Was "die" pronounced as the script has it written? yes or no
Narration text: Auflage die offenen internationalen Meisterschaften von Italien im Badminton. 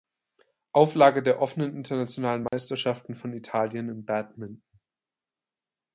no